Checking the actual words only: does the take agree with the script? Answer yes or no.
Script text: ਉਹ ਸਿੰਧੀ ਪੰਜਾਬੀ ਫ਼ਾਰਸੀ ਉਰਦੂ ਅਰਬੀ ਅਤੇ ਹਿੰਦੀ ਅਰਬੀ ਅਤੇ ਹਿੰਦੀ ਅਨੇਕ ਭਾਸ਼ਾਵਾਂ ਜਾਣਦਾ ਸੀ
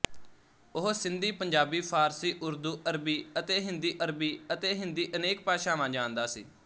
yes